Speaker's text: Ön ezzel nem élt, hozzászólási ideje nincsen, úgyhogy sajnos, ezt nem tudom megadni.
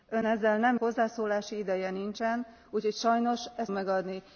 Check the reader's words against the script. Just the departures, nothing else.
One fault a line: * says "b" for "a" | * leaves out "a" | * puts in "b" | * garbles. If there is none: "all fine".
* leaves out "élt"
* leaves out "nem tudom"